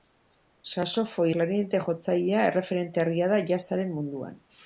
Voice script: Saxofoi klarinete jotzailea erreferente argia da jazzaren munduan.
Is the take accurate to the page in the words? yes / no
yes